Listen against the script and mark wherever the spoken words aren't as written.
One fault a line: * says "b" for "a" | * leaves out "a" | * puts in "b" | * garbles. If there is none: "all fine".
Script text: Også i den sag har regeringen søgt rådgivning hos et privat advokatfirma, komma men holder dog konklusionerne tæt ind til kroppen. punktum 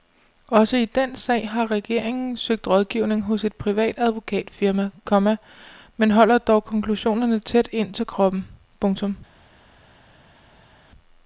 all fine